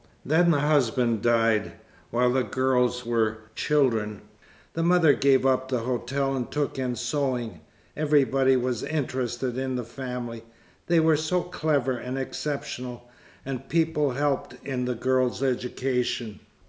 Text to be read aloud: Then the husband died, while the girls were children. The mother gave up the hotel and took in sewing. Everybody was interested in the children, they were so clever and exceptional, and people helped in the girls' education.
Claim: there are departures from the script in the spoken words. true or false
true